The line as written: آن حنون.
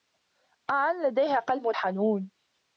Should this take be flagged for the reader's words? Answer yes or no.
yes